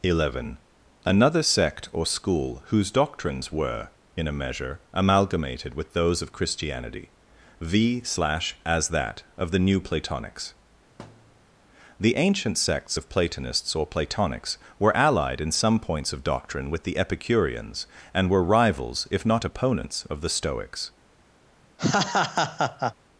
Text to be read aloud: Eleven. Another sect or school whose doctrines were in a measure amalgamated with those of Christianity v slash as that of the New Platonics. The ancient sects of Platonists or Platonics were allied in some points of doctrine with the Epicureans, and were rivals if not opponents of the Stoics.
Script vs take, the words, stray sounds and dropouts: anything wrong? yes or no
yes